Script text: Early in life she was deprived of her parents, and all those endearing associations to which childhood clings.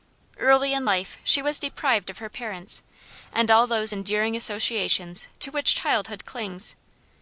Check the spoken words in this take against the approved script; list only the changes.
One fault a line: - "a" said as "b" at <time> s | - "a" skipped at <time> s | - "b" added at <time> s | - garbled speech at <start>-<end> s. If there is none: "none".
none